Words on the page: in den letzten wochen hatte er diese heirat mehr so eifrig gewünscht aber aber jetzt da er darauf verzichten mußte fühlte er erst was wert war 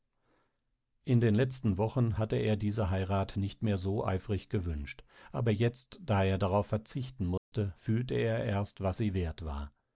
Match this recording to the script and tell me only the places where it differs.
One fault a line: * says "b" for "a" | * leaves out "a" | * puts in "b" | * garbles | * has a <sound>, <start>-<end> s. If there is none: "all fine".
* puts in "nicht"
* leaves out "aber"
* has a dropout, 7.4-7.5 s
* puts in "sie"